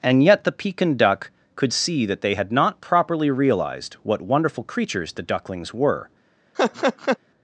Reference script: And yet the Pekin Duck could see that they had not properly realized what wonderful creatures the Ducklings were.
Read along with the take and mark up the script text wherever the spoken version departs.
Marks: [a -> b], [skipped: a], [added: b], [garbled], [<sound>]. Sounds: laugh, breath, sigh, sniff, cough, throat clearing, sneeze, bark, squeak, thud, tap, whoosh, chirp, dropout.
And yet the Pekin Duck could see that they had not properly realized what wonderful creatures the Ducklings were. [laugh]